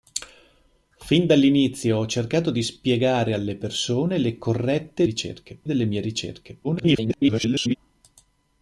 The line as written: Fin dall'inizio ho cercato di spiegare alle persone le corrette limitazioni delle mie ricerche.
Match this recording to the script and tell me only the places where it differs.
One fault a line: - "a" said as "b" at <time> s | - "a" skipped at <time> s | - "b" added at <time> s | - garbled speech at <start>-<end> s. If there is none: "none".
- "limitazioni" said as "ricerche" at 5.0 s
- garbled speech at 6.6-7.8 s